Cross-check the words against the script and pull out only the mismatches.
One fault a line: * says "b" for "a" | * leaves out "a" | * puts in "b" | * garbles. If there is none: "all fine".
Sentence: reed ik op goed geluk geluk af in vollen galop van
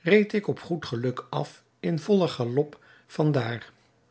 * leaves out "geluk"